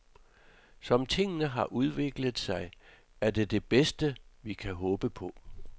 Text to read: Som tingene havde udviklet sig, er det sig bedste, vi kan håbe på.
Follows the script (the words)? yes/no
no